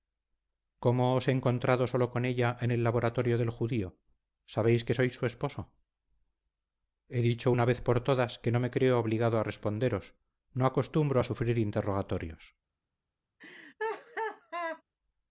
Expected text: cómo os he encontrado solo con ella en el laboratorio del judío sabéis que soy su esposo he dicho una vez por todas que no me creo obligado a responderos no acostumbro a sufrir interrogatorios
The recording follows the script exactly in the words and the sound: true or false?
false